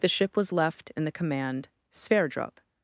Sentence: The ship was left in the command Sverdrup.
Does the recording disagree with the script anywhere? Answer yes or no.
no